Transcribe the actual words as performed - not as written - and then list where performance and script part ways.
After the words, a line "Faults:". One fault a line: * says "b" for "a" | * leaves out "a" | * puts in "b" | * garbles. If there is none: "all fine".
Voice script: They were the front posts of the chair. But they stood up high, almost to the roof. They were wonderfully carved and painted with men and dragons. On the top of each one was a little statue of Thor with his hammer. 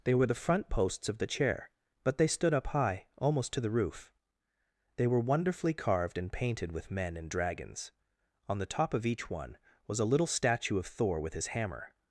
They were the front posts of the chair. But they stood up high, almost to the roof. They were wonderfully carved and painted with men and dragons. On the top of each one was a little statue of Thor with his hammer.
Faults:
all fine